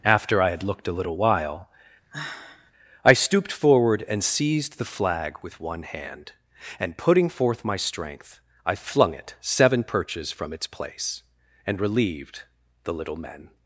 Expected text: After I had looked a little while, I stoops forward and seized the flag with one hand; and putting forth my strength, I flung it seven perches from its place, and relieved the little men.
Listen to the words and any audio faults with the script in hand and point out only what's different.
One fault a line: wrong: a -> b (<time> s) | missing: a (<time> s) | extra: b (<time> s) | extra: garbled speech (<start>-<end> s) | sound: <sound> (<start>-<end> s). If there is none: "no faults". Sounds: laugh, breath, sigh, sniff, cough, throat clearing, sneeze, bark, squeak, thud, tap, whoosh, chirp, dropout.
sound: sigh (2.1-2.7 s)
wrong: stoops -> stooped (3.1 s)